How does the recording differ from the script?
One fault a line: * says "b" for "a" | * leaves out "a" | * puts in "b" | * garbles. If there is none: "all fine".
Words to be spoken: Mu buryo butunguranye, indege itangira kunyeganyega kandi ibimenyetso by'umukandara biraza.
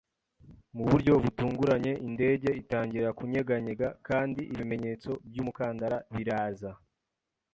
all fine